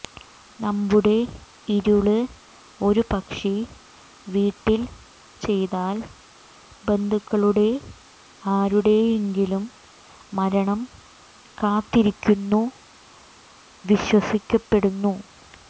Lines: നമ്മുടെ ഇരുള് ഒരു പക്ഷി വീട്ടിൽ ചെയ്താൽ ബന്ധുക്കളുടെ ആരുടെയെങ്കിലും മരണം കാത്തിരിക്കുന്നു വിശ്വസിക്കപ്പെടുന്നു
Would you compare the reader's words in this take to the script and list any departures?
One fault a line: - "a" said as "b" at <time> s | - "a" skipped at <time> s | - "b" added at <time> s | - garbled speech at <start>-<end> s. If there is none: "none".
none